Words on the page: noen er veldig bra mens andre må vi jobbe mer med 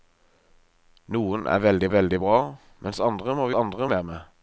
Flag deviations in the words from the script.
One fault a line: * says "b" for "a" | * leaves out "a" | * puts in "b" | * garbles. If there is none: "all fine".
* puts in "veldig"
* says "andre" for "jobbe"